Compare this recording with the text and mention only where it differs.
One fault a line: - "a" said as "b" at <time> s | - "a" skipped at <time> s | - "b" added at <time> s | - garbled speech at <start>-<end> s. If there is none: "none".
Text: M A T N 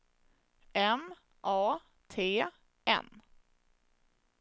none